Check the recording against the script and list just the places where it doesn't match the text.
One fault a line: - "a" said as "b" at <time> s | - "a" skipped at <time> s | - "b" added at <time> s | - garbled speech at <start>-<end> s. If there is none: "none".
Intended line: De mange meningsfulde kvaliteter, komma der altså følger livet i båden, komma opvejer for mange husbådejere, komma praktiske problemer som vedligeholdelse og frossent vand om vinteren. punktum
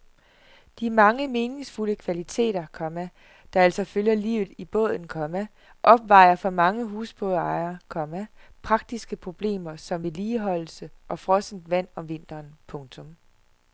none